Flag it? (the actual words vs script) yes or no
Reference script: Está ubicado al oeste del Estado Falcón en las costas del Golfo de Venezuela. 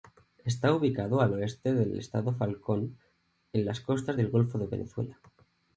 no